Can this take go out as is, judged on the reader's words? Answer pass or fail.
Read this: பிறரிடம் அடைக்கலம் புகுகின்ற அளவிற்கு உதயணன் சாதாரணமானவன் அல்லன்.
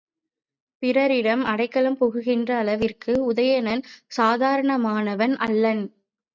pass